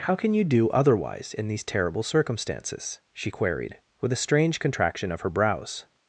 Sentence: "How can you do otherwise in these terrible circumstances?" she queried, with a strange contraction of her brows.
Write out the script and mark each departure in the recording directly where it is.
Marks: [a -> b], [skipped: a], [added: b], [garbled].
"How can you do otherwise in these terrible circumstances?" she queried, with a strange contraction of her brows.